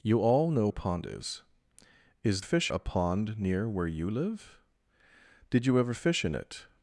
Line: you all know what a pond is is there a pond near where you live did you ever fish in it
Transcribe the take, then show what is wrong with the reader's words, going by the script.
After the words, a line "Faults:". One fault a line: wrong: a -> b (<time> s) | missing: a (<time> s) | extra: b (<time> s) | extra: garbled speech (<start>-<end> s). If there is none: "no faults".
you all know a pond is is fish a pond near where you live did you ever fish in it
Faults:
missing: what (0.7 s)
wrong: there -> fish (2.4 s)